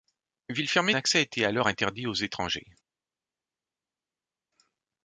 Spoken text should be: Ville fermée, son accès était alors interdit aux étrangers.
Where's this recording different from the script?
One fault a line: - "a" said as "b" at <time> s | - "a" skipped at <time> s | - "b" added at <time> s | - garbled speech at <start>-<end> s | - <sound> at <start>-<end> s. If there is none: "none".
- "son" skipped at 0.9 s